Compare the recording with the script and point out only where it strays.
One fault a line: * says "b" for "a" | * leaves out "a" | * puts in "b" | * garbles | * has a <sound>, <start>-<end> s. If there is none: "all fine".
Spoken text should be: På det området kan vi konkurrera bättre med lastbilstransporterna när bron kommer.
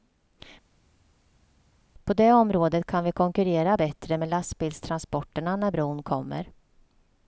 all fine